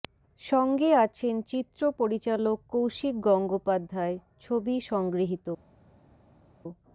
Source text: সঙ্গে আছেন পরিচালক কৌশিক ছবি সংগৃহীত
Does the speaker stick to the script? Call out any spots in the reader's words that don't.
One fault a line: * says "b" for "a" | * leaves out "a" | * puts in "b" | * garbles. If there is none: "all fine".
* puts in "চিত্র"
* puts in "গঙ্গোপাধ্যায়"